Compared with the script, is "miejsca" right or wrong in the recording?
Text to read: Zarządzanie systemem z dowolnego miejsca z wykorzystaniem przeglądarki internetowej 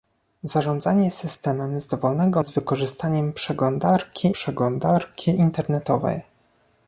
wrong